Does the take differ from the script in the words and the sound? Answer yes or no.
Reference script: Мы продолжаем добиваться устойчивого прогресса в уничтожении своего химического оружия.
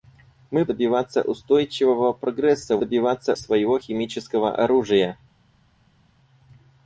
yes